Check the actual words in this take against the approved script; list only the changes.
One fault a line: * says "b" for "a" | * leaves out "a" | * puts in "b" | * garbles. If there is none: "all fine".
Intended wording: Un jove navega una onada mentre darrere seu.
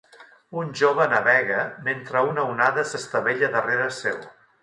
* puts in "mentre"
* says "s'estavella" for "mentre"